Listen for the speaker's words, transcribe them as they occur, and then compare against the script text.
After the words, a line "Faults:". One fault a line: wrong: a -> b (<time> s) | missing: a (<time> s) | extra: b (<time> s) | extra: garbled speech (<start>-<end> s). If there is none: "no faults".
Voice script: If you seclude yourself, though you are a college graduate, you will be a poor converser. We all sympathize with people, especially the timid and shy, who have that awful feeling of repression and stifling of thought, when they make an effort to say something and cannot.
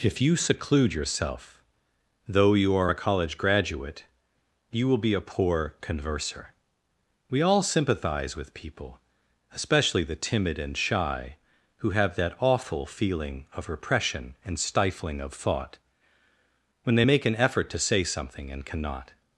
If you seclude yourself, though you are a college graduate, you will be a poor converser. We all sympathize with people, especially the timid and shy, who have that awful feeling of repression and stifling of thought, when they make an effort to say something and cannot.
Faults:
no faults